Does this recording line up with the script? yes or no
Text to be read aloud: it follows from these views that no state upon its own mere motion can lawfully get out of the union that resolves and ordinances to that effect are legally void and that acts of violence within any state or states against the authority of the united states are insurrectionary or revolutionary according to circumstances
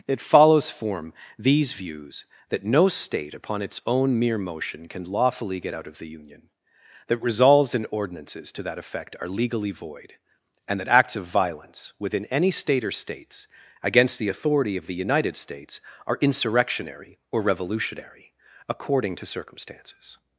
no